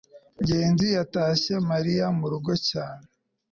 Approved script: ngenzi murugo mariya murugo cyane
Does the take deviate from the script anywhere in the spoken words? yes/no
yes